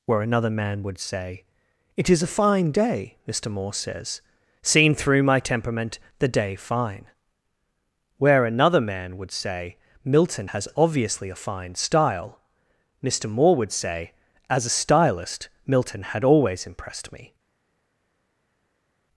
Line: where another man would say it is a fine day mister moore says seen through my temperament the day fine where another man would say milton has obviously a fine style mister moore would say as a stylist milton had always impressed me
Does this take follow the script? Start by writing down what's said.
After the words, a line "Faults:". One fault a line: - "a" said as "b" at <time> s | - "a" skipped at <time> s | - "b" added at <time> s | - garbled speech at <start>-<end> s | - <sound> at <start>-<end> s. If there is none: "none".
where another man would say it is a fine day mister moore says seen through my temperament the day fine where another man would say milton has obviously a fine style mister moore would say as a stylist milton had always impressed me
Faults:
none